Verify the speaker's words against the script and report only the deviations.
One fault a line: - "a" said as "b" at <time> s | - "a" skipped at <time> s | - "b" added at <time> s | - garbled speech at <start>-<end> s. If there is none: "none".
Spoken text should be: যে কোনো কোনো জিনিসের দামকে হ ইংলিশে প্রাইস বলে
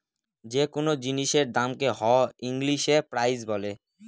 - "কোনো" skipped at 0.9 s